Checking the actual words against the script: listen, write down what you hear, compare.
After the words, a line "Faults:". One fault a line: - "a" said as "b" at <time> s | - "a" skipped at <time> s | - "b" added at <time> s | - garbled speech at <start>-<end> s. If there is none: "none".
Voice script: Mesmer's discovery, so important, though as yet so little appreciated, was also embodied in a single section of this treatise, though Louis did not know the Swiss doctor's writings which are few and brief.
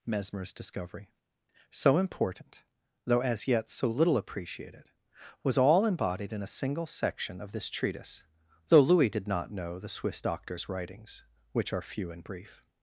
Mesmer's discovery, so important, though as yet so little appreciated, was all embodied in a single section of this treatise, though Louis did not know the Swiss doctor's writings which are few and brief.
Faults:
- "also" said as "all" at 5.6 s